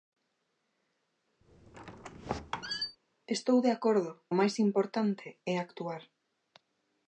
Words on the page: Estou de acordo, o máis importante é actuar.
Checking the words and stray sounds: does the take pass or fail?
fail